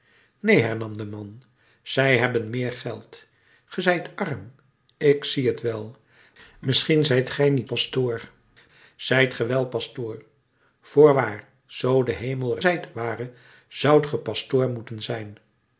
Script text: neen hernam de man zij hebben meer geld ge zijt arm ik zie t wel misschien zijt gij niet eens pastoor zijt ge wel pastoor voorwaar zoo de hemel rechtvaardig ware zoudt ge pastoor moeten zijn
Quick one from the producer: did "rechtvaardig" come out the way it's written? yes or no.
no